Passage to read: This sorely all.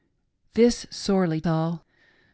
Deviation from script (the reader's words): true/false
false